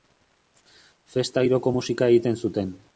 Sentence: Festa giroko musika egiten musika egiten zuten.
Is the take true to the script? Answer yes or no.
no